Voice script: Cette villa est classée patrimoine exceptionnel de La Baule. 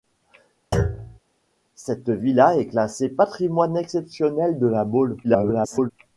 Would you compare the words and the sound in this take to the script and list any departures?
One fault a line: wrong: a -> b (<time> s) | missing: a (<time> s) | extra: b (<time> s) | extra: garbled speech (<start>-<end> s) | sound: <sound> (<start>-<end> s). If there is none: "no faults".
sound: thud (0.7-1.2 s)
extra: garbled speech (5.2-5.9 s)